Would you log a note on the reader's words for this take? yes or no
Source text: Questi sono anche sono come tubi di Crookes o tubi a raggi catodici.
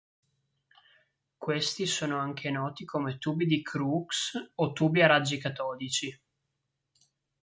yes